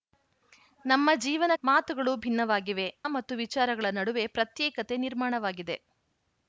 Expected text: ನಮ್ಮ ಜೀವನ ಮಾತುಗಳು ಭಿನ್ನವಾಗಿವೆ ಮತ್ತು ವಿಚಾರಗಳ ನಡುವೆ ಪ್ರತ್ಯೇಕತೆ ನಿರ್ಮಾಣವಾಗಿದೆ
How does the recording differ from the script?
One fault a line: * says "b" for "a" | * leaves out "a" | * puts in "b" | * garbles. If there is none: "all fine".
all fine